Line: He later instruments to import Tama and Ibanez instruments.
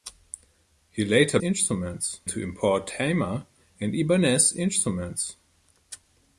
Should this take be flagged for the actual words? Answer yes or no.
no